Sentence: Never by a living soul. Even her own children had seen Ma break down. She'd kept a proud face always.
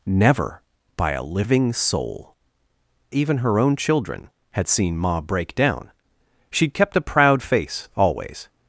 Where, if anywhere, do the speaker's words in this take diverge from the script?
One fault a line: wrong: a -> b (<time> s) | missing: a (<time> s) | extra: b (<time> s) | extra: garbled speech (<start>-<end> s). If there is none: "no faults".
no faults